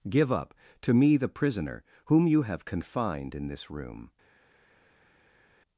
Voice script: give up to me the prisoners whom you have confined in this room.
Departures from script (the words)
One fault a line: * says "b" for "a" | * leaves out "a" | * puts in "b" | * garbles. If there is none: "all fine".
* says "prisoner" for "prisoners"